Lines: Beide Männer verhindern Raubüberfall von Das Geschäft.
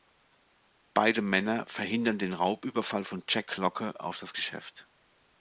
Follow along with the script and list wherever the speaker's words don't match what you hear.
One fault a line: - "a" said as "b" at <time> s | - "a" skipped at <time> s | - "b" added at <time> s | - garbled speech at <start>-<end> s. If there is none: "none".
- "den" added at 2.2 s
- "Jack Locke auf" added at 3.3 s